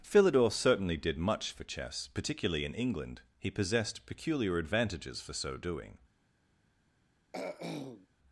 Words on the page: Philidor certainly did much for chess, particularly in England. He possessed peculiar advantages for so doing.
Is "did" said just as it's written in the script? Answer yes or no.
yes